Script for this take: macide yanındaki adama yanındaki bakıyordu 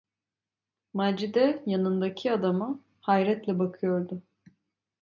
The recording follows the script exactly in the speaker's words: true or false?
false